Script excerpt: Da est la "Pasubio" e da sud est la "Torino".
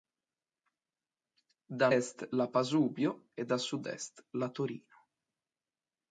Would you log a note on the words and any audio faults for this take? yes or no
no